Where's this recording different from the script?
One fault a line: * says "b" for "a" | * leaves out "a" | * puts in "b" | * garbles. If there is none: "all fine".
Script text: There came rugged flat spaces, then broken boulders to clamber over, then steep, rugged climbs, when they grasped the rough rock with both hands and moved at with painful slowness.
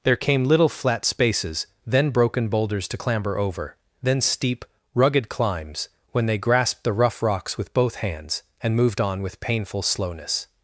* says "little" for "rugged"
* says "rocks" for "rock"
* says "on" for "at"